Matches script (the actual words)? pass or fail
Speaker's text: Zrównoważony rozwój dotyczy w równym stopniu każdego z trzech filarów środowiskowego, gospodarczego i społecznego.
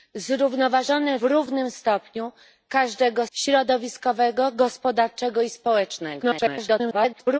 fail